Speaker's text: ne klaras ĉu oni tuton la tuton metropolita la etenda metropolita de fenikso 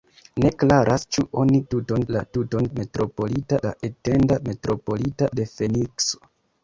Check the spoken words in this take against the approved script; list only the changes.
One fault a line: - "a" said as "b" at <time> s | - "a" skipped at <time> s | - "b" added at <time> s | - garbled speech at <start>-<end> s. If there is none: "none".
none